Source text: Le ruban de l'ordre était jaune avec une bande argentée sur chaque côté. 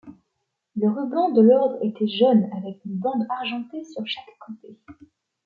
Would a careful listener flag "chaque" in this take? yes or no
no